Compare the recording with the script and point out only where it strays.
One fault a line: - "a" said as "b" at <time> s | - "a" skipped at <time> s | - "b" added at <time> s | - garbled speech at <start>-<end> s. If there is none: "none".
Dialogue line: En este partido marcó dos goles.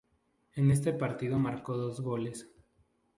none